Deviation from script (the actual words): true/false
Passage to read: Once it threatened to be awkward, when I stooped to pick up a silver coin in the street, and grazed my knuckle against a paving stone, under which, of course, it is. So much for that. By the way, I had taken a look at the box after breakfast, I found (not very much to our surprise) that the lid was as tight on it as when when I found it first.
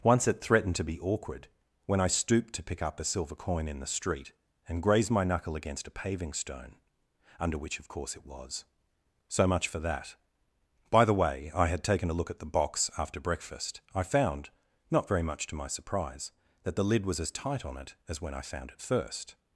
true